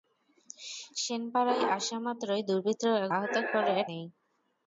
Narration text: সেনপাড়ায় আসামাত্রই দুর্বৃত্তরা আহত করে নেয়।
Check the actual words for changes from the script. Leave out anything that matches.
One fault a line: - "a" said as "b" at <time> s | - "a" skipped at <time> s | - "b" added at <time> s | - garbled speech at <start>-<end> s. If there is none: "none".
none